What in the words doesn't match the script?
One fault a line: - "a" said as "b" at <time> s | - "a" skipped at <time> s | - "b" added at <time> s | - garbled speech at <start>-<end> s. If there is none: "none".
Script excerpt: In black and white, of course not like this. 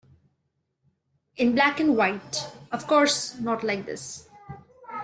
none